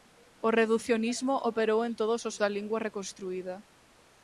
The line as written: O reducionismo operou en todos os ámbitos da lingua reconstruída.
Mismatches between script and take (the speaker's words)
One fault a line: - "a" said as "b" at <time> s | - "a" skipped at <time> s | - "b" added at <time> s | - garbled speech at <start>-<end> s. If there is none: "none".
- "ámbitos" skipped at 2.4 s